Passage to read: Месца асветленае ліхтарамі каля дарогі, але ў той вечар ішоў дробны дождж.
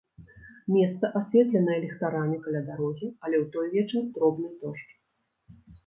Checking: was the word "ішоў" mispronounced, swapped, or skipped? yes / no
yes